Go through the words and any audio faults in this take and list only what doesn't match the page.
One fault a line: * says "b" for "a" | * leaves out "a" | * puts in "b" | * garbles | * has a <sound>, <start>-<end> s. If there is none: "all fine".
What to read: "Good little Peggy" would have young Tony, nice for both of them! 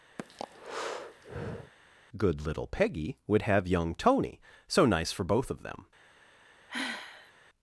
* has a breath, 0.2-1.7 s
* puts in "so"
* has a sigh, 6.7-7.3 s